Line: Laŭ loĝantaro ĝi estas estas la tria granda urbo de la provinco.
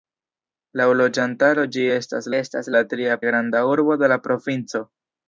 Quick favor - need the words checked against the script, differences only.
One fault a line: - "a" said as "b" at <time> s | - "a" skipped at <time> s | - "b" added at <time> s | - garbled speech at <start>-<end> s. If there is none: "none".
none